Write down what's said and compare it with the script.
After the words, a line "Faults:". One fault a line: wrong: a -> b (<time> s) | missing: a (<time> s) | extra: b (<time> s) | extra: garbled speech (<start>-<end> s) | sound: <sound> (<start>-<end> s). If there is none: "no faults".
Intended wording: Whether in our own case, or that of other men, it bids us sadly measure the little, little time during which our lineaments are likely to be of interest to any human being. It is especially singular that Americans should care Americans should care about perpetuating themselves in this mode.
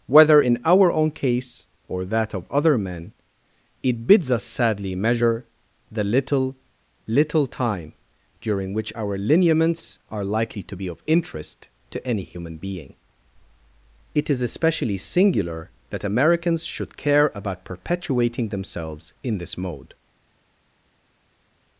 Whether in our own case, or that of other men, it bids us sadly measure the little, little time during which our lineaments are likely to be of interest to any human being. It is especially singular that Americans should care about perpetuating themselves in this mode.
Faults:
missing: Americans should care (17.3 s)